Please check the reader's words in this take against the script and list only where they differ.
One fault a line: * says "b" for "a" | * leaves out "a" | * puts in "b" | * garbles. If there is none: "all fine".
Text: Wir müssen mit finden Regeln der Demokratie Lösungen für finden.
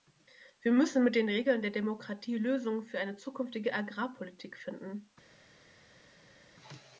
* says "den" for "finden"
* puts in "eine zukünftige Agrarpolitik"